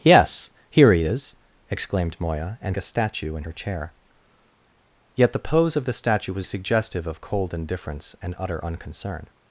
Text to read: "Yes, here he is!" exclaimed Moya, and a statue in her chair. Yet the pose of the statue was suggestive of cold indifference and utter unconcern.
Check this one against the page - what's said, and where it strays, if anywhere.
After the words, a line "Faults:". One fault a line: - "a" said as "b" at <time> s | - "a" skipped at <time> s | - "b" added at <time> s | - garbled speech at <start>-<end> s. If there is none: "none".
"Yes, here he is!" exclaimed Moya, and a statue in her chair. Yet the pose of the statue was suggestive of cold indifference and utter unconcern.
Faults:
none